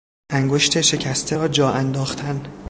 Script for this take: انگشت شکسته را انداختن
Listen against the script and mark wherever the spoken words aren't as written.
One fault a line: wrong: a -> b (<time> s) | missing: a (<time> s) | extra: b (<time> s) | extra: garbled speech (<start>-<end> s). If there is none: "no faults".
extra: جا (1.5 s)